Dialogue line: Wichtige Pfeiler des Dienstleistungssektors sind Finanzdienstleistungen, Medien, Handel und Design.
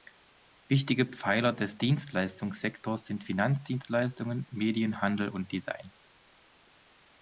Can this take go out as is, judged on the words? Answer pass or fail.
pass